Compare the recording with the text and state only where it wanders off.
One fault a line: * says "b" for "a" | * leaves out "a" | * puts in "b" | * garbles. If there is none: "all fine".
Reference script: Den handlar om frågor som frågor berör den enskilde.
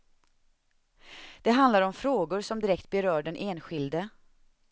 * says "Det" for "Den"
* says "direkt" for "frågor"